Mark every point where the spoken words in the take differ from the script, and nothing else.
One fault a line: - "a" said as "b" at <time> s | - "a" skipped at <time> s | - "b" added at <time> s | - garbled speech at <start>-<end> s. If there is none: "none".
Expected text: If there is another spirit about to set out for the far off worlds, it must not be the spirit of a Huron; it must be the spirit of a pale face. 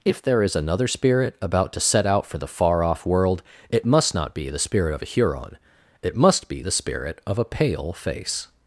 - "worlds" said as "world" at 3.0 s